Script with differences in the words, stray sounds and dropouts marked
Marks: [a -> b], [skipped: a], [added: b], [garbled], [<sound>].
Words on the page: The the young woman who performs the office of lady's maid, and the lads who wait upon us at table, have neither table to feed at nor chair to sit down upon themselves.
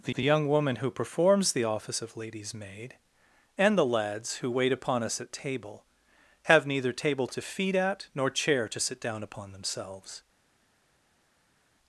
The the young woman who performs the office of lady's maid, and the lads who wait upon us at table, have neither table to feed at nor chair to sit down upon themselves.